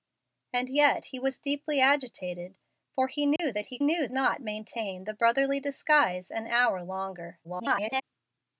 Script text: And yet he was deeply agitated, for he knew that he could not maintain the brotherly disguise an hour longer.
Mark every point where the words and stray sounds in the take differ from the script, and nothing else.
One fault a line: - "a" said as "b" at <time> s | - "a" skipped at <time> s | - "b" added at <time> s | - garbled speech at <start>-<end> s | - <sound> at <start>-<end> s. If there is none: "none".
- dropout at 3.4-3.4 s
- "could" said as "knew" at 3.8 s
- garbled speech at 7.4-8.0 s